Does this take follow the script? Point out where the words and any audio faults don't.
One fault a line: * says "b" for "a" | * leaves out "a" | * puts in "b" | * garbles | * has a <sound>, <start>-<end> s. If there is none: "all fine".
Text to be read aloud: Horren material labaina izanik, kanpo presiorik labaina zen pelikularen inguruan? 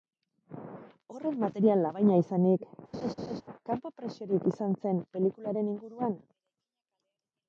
* has a laugh, 2.9-3.4 s
* says "izan" for "labaina"